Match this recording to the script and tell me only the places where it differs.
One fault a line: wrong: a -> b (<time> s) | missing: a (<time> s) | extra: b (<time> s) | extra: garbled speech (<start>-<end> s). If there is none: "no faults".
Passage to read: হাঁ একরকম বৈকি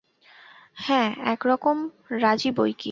extra: রাজি (2.2 s)